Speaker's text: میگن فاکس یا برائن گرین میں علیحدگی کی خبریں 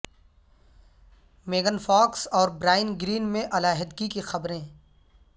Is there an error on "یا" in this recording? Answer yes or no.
yes